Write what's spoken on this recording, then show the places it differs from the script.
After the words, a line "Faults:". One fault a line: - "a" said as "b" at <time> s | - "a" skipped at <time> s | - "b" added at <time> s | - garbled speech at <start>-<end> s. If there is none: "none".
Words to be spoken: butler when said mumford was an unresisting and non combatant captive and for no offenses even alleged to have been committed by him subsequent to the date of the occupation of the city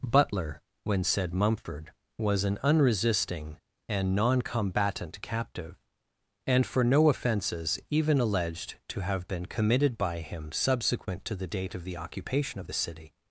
butler when said mumford was an unresisting and non combatant captive and for no offenses even alleged to have been committed by him subsequent to the date of the occupation of the city
Faults:
none